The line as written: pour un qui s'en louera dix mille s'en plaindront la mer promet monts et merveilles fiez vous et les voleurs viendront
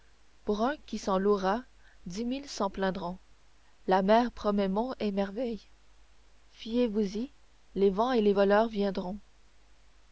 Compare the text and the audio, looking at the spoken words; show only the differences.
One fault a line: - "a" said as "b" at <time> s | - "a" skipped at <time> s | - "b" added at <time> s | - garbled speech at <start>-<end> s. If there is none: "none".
- "y les vents" added at 7.2 s